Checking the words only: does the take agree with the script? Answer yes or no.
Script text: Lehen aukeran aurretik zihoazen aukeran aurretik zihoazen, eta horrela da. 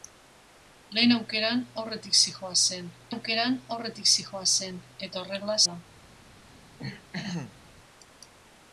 yes